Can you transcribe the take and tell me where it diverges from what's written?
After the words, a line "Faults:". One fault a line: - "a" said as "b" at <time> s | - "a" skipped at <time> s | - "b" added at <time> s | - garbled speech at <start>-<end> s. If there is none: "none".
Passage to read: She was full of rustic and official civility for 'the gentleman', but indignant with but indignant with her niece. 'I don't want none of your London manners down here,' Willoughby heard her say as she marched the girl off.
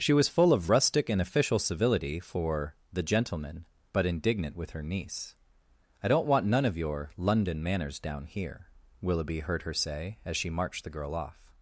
She was full of rustic and official civility for 'the gentleman', but indignant with her niece. 'I don't want none of your London manners down here,' Willoughby heard her say as she marched the girl off.
Faults:
- "but indignant with" skipped at 4.7 s